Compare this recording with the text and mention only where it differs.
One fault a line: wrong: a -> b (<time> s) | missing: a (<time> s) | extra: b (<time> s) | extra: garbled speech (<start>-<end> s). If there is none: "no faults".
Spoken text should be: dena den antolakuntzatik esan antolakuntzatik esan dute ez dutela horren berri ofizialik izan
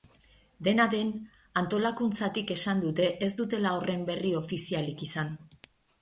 missing: antolakuntzatik esan (2.8 s)